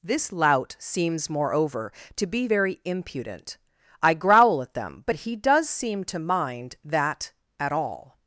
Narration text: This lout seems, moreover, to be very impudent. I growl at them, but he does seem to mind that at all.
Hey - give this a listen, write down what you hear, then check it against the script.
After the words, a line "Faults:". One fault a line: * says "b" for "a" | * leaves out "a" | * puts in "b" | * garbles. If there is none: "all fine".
This lout seems, moreover, to be very impudent. I growl at them, but he does seem to mind that at all.
Faults:
all fine